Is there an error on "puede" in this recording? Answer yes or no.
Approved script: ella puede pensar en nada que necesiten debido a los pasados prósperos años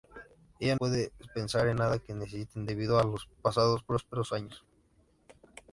no